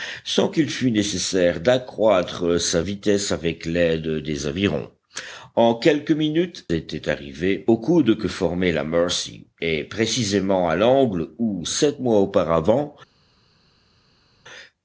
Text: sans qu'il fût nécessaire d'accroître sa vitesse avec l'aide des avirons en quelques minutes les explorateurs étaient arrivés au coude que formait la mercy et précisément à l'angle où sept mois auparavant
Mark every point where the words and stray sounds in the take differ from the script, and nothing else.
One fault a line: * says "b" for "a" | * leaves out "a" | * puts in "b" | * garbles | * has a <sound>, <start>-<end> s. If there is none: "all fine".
* leaves out "les explorateurs"